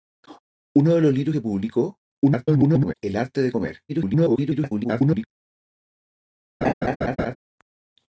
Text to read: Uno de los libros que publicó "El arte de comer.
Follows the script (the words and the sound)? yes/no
no